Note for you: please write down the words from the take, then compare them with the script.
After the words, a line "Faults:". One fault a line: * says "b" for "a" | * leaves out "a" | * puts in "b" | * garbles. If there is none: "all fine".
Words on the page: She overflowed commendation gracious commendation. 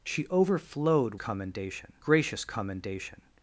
She overflowed commendation gracious commendation.
Faults:
all fine